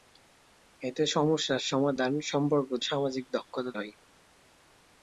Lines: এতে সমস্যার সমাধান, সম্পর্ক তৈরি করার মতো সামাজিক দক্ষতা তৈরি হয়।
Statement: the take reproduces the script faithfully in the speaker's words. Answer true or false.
false